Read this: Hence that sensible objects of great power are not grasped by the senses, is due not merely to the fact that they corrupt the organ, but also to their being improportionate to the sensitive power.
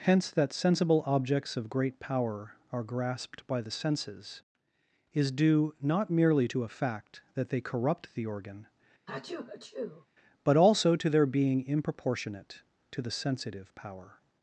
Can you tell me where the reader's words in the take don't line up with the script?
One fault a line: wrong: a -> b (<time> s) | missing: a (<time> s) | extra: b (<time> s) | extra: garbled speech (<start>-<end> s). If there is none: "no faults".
missing: not (2.8 s)
wrong: the -> a (6.6 s)